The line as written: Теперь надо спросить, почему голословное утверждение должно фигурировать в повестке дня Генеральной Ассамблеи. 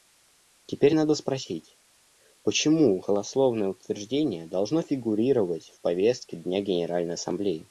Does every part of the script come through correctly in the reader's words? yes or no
yes